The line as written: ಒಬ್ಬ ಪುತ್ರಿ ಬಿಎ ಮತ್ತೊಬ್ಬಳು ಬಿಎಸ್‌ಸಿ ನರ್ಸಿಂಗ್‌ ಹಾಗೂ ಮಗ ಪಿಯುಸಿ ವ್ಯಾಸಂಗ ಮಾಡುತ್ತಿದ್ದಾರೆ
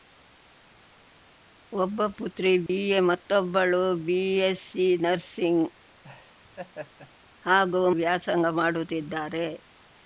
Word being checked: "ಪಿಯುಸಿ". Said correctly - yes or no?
no